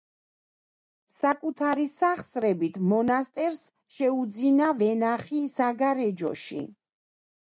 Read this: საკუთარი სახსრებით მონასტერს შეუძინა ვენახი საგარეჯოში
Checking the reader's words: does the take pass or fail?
pass